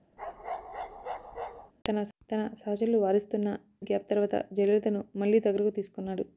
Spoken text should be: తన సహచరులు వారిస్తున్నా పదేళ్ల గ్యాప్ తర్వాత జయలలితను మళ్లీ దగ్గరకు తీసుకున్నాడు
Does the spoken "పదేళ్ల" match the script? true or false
false